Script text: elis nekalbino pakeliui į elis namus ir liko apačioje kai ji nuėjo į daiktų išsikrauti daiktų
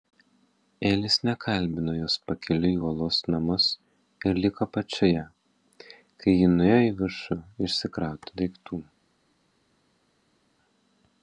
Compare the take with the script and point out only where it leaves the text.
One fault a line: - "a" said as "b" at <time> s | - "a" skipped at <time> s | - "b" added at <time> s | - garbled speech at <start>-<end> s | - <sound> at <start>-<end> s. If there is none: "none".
- "jos" added at 2.0 s
- "elis" said as "uolos" at 2.9 s
- "daiktų" said as "viršų" at 7.0 s